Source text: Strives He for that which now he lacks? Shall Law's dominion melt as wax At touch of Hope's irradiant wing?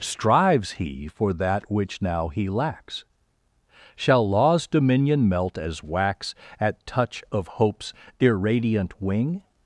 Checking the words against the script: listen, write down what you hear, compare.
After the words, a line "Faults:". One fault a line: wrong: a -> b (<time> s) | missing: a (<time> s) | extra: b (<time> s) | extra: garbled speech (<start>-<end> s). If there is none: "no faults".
Strives He for that which now he lacks? Shall Law's dominion melt as wax At touch of Hope's irradiant wing?
Faults:
no faults